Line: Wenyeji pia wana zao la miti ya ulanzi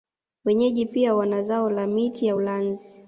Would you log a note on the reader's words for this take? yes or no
no